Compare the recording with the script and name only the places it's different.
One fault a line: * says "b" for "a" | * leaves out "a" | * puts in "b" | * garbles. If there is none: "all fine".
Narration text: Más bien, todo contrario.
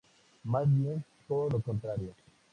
* puts in "lo"